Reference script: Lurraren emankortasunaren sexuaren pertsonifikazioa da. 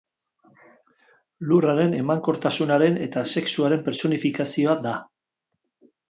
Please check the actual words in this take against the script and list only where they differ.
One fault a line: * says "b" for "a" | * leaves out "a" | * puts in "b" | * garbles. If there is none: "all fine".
* puts in "eta"